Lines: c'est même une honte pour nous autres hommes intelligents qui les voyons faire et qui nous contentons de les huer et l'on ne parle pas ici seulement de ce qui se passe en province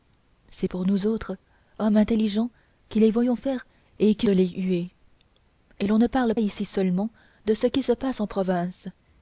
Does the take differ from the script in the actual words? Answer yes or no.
yes